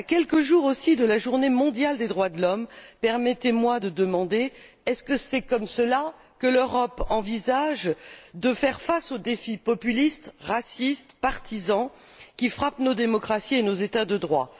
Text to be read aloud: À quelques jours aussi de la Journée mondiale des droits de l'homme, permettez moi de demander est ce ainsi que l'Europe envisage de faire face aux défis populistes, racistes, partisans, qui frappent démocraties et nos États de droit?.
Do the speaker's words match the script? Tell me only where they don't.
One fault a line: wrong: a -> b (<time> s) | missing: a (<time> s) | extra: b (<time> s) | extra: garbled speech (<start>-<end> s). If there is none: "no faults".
extra: nos (12.8 s)